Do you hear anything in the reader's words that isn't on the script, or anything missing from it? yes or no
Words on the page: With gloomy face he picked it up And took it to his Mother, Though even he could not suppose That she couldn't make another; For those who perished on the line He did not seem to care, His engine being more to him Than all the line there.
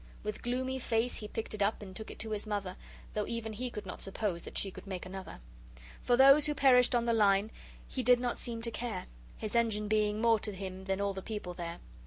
yes